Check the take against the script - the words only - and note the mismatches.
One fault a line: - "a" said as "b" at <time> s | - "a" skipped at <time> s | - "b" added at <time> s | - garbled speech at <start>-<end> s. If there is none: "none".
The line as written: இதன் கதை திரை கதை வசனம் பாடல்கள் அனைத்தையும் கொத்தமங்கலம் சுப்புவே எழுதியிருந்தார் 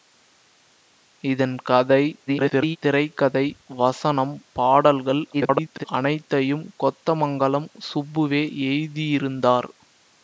- garbled speech at 2.3-2.8 s
- garbled speech at 5.3-5.8 s